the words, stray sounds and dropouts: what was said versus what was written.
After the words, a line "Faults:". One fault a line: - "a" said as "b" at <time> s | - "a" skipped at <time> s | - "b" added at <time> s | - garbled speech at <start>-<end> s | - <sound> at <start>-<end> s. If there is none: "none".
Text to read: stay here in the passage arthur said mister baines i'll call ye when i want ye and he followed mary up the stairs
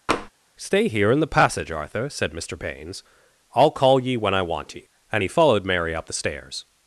stay here in the passage arthur said mister baines i'll call ye when i want ye and he followed mary up the stairs
Faults:
- tap at 0.1-0.3 s